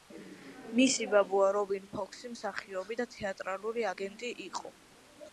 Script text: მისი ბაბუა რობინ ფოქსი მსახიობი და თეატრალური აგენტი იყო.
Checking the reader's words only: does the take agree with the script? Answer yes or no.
yes